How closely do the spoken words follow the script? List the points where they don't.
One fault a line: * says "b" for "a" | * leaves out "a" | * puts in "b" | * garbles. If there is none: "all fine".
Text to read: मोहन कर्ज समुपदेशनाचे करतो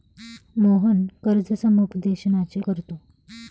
all fine